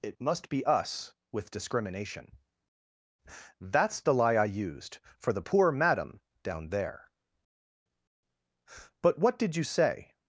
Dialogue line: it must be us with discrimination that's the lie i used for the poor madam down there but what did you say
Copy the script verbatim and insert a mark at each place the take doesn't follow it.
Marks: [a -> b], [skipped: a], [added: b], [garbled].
it must be us with discrimination that's the lie i used for the poor madam down there but what did you say